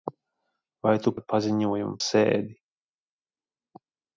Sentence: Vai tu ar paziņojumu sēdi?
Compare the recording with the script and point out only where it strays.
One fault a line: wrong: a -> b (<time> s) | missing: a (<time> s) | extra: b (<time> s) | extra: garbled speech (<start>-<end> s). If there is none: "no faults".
no faults